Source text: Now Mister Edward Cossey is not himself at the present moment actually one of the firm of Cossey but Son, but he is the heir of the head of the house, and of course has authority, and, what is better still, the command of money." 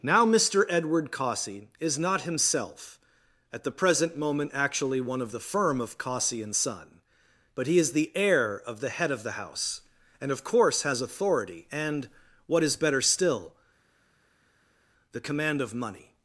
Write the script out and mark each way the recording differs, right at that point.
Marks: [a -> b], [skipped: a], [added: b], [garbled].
Now Mister Edward Cossey is not himself at the present moment actually one of the firm of Cossey [but -> and] Son, but he is the heir of the head of the house, and of course has authority, and, what is better still, the command of money."